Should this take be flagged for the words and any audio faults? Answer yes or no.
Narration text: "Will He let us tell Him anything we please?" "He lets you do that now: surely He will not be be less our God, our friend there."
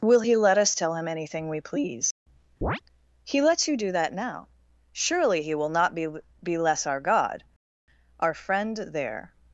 yes